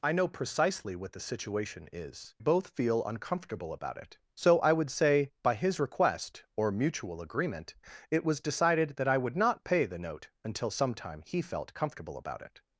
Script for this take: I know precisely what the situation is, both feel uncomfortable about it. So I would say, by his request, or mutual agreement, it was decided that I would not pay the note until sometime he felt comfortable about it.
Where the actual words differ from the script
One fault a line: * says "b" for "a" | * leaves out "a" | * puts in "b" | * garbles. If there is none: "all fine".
all fine